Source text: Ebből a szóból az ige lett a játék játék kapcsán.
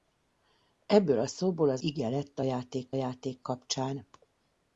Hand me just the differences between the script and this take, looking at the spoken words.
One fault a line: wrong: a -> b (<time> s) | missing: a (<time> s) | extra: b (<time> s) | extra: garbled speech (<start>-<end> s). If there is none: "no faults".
no faults